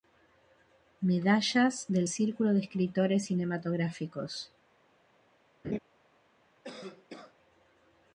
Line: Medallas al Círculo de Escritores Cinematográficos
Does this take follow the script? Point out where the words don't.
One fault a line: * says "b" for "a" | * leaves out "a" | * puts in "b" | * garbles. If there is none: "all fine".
* says "del" for "al"